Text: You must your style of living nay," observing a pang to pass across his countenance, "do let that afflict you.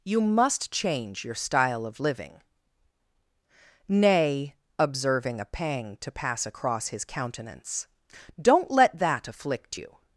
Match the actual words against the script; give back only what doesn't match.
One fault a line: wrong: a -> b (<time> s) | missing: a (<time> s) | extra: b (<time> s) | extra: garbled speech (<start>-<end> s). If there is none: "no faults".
extra: change (0.7 s)
wrong: do -> don't (8.4 s)